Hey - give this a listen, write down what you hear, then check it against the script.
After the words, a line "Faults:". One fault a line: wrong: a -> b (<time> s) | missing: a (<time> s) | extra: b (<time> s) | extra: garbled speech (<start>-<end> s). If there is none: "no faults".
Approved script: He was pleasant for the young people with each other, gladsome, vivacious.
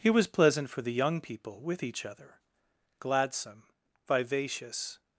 He was pleasant for the young people with each other, gladsome, vivacious.
Faults:
no faults